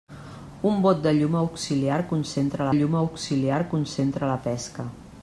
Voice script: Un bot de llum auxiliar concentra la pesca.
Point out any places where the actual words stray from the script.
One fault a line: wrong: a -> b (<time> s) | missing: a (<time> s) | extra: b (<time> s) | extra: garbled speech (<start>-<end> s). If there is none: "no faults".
extra: llum auxiliar concentra (2.8 s)